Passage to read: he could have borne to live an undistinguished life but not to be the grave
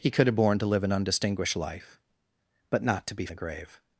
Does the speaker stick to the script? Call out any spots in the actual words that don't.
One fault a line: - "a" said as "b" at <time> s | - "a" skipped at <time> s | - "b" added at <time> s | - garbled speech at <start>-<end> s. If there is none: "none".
none